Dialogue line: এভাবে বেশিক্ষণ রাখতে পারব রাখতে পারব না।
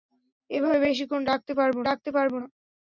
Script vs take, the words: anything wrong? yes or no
no